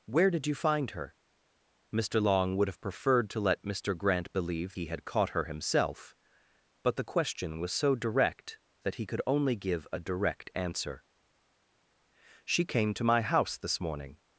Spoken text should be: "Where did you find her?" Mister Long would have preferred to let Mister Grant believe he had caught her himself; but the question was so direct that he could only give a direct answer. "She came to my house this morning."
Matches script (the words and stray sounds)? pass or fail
pass